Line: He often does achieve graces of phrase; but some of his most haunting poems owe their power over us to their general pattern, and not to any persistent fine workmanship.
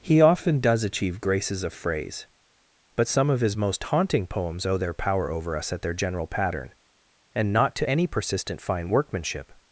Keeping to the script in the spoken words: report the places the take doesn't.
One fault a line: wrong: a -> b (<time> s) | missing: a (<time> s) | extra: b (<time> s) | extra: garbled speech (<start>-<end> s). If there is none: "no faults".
wrong: to -> at (5.7 s)